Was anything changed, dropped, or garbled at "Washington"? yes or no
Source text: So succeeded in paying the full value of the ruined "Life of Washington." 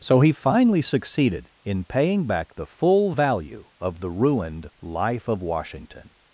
no